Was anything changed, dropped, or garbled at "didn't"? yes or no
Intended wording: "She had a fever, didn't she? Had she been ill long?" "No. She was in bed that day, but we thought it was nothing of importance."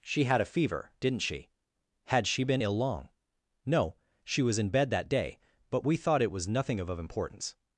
no